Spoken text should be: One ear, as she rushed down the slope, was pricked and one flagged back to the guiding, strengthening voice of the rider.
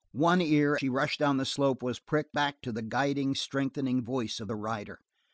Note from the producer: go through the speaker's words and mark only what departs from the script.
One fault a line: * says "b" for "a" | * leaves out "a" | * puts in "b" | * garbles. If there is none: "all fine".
* leaves out "as"
* leaves out "and one flagged"